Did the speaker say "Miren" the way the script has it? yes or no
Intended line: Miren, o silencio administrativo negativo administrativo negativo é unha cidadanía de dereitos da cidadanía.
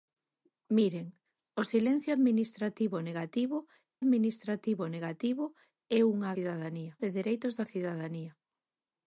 yes